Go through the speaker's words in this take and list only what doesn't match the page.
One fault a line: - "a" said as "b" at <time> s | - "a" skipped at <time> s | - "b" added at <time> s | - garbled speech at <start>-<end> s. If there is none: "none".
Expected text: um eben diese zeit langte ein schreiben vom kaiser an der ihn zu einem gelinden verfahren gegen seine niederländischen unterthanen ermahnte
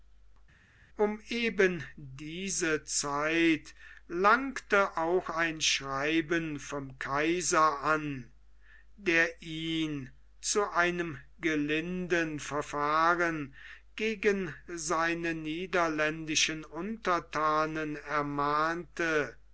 - "auch" added at 5.0 s